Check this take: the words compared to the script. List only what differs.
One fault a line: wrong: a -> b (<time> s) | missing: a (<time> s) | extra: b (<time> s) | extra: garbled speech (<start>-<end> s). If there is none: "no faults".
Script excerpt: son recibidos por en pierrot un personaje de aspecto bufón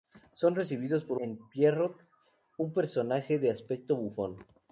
no faults